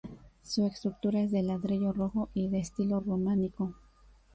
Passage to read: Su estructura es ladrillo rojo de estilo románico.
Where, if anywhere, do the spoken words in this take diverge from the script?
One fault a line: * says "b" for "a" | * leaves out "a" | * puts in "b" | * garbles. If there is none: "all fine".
* puts in "de"
* puts in "y"